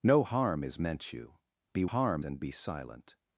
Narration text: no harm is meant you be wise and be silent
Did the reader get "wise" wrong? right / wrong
wrong